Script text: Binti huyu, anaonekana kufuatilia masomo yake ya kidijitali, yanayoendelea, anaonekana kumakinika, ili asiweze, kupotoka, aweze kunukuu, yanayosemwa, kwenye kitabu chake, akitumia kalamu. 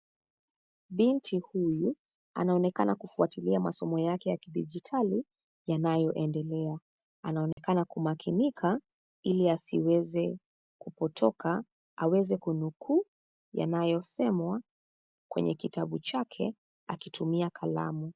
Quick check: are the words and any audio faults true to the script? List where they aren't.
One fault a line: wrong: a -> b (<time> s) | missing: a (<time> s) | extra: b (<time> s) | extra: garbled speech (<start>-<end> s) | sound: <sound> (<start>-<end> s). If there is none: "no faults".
sound: dropout (7.5-7.6 s)